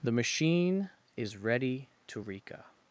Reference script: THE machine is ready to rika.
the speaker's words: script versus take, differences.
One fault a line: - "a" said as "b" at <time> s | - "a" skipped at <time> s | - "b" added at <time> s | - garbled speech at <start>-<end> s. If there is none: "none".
none